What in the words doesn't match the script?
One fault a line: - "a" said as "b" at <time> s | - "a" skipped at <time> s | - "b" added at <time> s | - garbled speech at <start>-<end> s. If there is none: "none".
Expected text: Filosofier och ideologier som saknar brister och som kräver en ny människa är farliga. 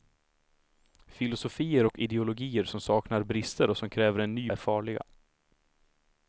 - "människa" skipped at 4.5 s